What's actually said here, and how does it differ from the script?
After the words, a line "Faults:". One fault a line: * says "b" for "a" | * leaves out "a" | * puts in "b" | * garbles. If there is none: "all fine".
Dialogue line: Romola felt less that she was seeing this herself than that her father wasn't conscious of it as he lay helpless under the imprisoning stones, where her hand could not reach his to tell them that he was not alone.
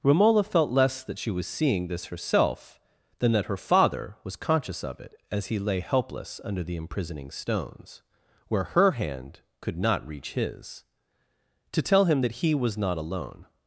Romola felt less that she was seeing this herself than that her father was conscious of it as he lay helpless under the imprisoning stones, where her hand could not reach his to tell him that he was not alone.
Faults:
* says "was" for "wasn't"
* says "him" for "them"